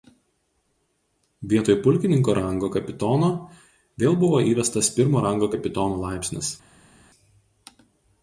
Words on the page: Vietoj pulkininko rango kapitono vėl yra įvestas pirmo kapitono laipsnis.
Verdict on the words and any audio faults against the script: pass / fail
fail